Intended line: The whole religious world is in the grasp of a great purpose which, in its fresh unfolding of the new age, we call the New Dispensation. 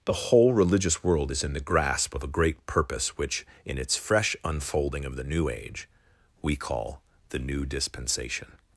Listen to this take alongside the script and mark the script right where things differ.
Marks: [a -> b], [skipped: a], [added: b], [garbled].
The whole religious world is in the grasp of a great purpose which, in its fresh unfolding of the new age, we call the New Dispensation.